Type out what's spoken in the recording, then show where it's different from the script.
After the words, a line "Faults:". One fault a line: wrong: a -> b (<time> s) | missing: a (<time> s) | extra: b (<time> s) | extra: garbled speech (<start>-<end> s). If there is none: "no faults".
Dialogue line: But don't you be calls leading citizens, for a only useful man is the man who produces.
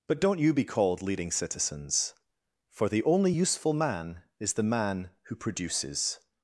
But don't you be called leading citizens, for the only useful man is the man who produces.
Faults:
wrong: calls -> called (0.6 s)
wrong: a -> the (2.9 s)